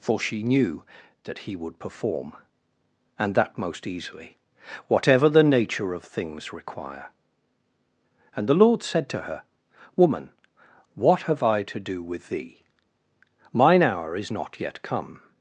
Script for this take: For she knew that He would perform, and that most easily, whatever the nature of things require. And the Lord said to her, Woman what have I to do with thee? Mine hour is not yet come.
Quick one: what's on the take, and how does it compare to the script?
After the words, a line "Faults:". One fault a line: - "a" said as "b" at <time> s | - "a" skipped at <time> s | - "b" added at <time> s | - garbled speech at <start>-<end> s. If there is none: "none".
For she knew that He would perform, and that most easily, whatever the nature of things require. And the Lord said to her, Woman what have I to do with thee? Mine hour is not yet come.
Faults:
none